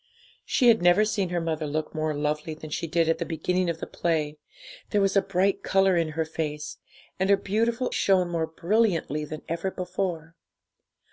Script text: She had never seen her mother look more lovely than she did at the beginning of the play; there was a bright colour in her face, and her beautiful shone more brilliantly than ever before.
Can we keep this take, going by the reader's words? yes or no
yes